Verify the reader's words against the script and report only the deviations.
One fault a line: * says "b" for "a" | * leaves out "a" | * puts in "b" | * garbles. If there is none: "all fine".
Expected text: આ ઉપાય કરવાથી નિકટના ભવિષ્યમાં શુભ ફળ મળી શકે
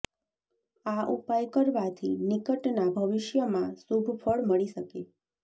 all fine